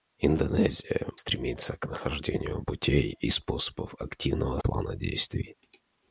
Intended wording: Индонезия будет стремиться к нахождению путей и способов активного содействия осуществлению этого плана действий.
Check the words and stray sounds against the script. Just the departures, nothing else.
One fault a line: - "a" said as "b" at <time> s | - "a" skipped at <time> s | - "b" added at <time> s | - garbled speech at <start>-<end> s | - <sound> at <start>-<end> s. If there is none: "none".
- "будет" skipped at 1.1 s
- "содействия осуществлению этого" skipped at 4.6 s